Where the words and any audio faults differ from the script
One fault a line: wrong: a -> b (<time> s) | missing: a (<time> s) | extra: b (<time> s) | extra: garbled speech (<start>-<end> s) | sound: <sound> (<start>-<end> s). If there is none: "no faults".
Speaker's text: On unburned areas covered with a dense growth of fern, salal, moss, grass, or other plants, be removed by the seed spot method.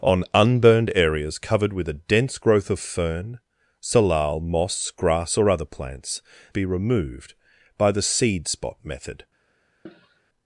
sound: cough (9.9-10.2 s)